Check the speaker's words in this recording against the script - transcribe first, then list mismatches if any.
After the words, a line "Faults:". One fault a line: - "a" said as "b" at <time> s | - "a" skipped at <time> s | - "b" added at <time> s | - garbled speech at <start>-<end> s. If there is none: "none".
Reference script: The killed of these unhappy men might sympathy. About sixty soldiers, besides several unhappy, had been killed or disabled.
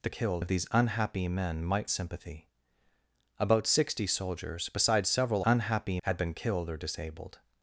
The killed of these unhappy men might sympathy. About sixty soldiers, besides several unhappy, had been killed or disabled.
Faults:
none